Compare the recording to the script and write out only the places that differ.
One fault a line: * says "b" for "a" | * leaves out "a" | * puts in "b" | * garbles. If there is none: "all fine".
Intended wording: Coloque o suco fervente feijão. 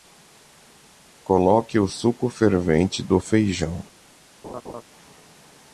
* puts in "do"